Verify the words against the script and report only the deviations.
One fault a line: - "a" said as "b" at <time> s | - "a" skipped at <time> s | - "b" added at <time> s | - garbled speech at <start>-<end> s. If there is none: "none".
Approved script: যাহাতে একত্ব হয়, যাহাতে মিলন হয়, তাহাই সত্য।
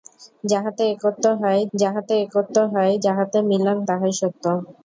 - "মিলন" said as "একত্ব" at 2.2 s
- "যাহাতে মিলন" added at 3.0 s